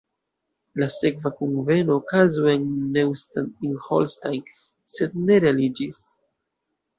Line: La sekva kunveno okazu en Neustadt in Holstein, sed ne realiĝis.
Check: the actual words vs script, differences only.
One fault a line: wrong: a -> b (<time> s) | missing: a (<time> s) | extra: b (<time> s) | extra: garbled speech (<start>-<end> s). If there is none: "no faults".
no faults